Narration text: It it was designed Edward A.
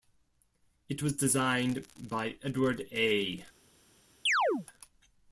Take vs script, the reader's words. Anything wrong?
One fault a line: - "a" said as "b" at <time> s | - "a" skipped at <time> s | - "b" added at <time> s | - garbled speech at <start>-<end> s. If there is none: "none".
- "it" skipped at 1.0 s
- "by" added at 2.0 s